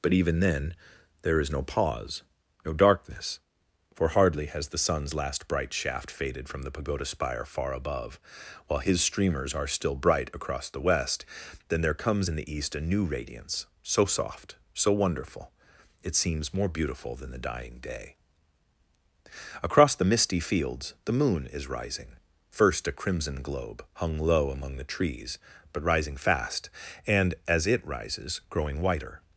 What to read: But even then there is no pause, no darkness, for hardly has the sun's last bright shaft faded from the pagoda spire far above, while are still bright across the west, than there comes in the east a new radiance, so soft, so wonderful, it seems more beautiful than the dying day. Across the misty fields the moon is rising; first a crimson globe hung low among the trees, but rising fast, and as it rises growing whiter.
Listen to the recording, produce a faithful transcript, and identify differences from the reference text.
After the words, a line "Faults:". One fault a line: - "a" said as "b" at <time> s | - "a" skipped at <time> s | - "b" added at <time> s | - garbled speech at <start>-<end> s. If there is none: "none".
But even then there is no pause, no darkness, for hardly has the sun's last bright shaft faded from the pagoda spire far above, while his streamers are still bright across the west, than there comes in the east a new radiance, so soft, so wonderful, it seems more beautiful than the dying day. Across the misty fields the moon is rising; first a crimson globe hung low among the trees, but rising fast, and as it rises growing whiter.
Faults:
- "his streamers" added at 8.8 s